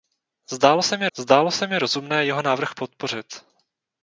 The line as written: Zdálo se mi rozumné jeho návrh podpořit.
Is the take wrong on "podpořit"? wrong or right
right